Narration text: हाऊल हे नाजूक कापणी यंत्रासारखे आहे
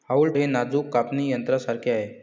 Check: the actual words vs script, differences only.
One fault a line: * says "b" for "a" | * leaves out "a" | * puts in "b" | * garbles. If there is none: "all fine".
all fine